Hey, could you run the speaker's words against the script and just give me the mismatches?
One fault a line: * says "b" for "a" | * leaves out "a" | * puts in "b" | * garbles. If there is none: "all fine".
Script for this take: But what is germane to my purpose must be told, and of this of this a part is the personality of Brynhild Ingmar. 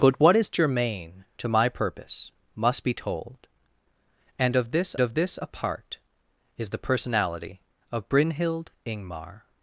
all fine